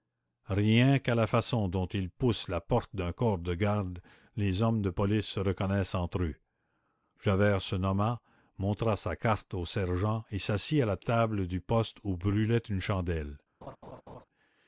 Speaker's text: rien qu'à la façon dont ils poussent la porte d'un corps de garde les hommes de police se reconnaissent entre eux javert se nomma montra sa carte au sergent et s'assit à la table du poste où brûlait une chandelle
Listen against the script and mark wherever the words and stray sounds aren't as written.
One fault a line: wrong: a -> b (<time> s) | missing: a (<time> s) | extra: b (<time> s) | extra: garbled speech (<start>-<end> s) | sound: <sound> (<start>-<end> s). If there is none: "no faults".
sound: laugh (13.6-14.3 s)